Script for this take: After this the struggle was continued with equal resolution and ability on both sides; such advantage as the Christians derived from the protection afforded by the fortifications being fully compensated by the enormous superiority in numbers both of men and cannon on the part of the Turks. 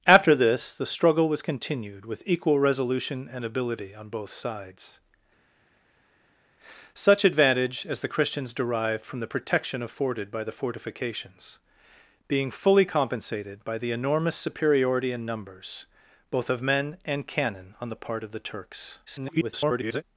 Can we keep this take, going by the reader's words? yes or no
no